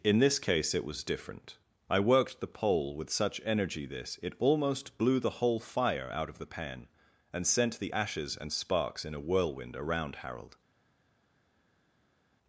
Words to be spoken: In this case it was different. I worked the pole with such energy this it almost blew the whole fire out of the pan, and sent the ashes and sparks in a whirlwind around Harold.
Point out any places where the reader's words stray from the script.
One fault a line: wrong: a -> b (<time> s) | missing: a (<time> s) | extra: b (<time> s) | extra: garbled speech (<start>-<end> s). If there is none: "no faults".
no faults